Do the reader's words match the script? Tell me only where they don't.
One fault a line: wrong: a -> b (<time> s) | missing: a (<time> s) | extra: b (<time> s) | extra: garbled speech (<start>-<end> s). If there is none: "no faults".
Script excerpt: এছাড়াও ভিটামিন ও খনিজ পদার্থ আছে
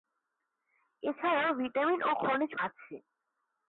missing: পদার্থ (2.5 s)